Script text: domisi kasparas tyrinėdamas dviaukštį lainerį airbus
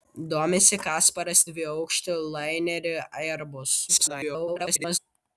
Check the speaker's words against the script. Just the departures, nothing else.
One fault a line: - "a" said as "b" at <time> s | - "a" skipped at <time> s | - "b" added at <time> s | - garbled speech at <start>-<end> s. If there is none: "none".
- "tyrinėdamas" skipped at 1.4 s
- garbled speech at 3.9-5.0 s